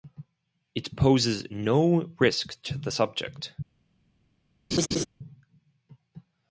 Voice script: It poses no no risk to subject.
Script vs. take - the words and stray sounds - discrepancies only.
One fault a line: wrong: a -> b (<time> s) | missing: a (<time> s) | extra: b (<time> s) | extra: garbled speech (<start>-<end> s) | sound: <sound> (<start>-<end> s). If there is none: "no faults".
missing: no (2.1 s)
extra: the (2.8 s)
sound: laugh (4.7-5.1 s)